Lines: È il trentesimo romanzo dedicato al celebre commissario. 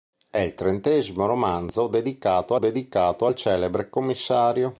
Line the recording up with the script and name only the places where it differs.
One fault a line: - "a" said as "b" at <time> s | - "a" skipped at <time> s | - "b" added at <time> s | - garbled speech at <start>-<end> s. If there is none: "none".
- "dedicato" added at 2.6 s